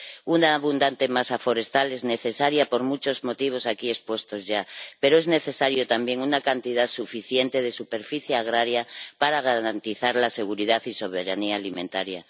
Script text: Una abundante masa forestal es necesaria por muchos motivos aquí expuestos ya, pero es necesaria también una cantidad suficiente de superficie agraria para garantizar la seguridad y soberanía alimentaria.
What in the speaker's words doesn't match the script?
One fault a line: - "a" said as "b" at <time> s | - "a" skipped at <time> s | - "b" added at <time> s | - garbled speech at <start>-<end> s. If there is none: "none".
none